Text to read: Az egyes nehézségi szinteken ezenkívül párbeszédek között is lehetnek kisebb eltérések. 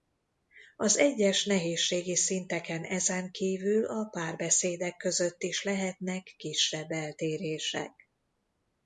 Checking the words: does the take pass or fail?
fail